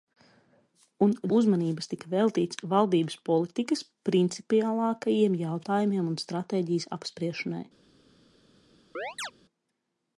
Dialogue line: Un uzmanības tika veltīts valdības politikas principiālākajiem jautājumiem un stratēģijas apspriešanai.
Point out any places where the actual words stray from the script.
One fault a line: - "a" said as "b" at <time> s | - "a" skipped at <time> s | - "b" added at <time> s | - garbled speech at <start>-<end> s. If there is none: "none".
none